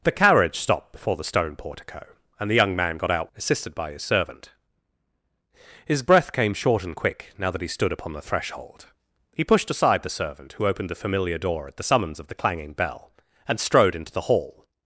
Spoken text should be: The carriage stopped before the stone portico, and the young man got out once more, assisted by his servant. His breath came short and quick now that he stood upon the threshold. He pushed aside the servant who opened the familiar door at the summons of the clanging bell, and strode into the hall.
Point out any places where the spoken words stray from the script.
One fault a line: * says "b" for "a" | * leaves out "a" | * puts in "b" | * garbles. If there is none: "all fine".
* leaves out "once more"